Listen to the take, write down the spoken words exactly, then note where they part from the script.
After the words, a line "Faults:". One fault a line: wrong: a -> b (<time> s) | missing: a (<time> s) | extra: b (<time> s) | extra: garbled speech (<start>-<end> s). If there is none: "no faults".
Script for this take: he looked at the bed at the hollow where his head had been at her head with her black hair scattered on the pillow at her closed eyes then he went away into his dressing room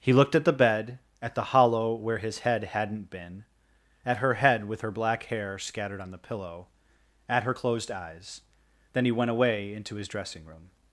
he looked at the bed at the hollow where his head hadn't been at her head with her black hair scattered on the pillow at her closed eyes then he went away into his dressing room
Faults:
wrong: had -> hadn't (2.6 s)